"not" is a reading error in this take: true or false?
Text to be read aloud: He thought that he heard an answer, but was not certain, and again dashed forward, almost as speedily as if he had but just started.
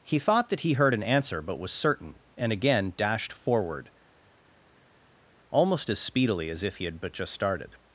true